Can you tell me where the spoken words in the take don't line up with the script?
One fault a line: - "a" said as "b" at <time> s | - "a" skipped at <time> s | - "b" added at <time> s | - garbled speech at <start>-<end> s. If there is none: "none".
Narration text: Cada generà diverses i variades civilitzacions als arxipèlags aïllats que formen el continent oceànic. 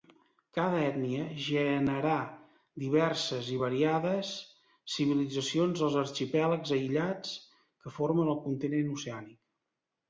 - "ètnia" added at 0.8 s